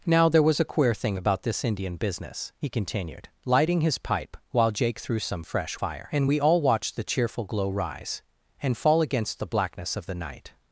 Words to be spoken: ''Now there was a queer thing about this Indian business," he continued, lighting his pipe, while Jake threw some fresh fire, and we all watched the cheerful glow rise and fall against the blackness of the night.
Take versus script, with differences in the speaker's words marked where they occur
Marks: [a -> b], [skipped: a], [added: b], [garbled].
''Now there was a queer thing about this Indian business," he continued, lighting his pipe, while Jake threw some fresh fire, and we all watched the cheerful glow rise and fall against the blackness of the night.